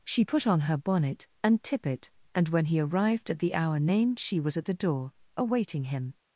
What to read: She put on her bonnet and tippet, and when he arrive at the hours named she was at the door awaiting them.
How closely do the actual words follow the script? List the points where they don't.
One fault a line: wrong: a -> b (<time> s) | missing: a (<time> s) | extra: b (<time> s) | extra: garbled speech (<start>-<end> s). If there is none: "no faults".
wrong: arrive -> arrived (2.8 s)
wrong: hours -> hour (3.5 s)
wrong: them -> him (5.8 s)